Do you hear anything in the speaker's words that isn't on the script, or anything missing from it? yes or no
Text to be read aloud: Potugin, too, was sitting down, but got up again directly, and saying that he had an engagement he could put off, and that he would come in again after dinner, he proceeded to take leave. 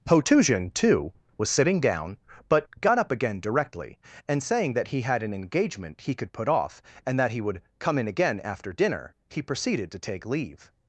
no